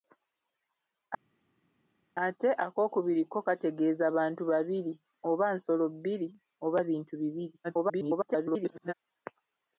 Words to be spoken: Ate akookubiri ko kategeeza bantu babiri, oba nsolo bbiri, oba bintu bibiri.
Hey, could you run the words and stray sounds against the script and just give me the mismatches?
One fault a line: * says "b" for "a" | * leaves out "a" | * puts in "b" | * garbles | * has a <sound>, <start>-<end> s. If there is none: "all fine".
* garbles